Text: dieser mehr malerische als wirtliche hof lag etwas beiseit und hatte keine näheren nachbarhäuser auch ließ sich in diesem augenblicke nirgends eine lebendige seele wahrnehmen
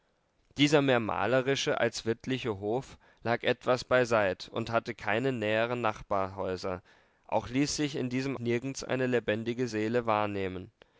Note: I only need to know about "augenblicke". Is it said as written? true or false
false